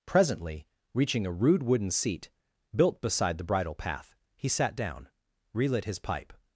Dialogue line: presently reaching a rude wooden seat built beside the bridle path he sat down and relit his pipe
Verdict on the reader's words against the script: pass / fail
fail